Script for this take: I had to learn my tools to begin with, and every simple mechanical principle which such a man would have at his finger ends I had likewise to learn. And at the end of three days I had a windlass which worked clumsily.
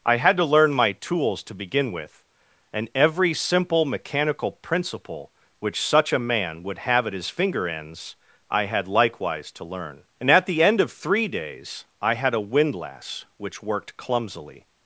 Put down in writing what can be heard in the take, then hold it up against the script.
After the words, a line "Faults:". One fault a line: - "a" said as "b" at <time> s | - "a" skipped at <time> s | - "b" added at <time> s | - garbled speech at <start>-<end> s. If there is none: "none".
I had to learn my tools to begin with, and every simple mechanical principle which such a man would have at his finger ends I had likewise to learn. And at the end of three days I had a windlass which worked clumsily.
Faults:
none